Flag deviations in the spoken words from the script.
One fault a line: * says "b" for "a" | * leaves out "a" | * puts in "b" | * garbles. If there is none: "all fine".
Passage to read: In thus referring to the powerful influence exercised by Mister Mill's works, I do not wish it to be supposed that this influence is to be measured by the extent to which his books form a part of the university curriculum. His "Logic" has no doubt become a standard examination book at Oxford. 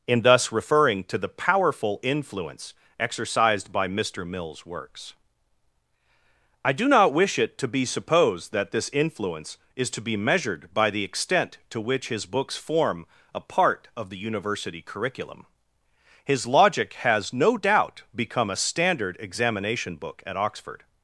all fine